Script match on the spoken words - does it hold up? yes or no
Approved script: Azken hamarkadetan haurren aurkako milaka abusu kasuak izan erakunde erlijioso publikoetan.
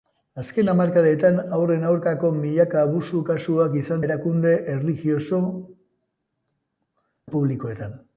yes